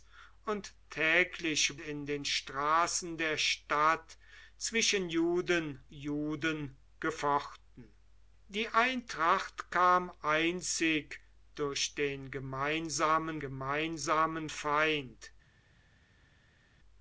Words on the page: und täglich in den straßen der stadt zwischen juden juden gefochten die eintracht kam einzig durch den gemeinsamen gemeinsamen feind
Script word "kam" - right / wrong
right